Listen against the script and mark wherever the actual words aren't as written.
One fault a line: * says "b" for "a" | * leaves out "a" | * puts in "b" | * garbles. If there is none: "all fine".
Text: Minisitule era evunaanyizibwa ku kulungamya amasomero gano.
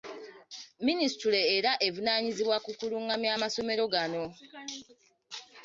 all fine